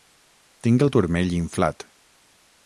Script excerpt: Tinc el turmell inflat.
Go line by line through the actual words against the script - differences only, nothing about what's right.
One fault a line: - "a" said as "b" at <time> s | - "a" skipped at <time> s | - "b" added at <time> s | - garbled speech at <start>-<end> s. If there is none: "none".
none